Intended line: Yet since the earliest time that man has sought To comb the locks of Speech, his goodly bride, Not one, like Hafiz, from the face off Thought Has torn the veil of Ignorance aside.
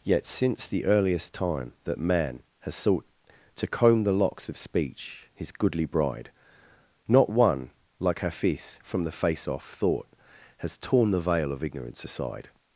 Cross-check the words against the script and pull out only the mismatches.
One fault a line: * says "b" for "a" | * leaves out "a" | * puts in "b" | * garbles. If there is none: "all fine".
all fine